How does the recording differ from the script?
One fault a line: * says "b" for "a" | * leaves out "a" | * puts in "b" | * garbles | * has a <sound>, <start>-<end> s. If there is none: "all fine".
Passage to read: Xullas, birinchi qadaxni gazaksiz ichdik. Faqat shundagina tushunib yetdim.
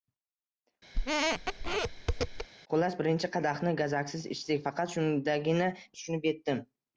* has a squeak, 0.9-2.5 s